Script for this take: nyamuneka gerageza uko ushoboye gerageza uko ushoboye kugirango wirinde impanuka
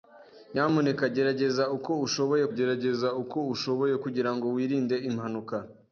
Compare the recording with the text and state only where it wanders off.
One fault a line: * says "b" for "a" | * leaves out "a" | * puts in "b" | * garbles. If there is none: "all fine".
all fine